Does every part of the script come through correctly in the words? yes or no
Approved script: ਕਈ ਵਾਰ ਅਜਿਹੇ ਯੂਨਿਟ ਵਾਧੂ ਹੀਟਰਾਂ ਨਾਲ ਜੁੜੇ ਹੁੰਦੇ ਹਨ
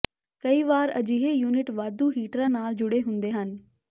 yes